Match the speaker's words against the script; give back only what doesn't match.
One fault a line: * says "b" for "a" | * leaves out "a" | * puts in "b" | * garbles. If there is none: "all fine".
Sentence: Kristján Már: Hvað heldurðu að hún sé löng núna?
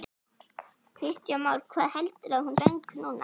* leaves out "sé"